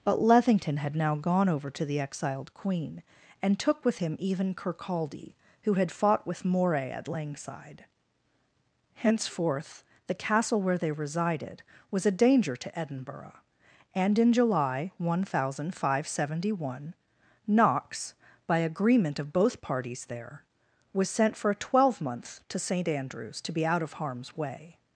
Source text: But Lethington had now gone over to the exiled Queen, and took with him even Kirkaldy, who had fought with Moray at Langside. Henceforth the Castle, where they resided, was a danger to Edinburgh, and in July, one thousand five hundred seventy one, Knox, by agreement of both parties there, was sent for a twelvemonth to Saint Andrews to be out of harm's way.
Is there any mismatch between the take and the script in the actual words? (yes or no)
no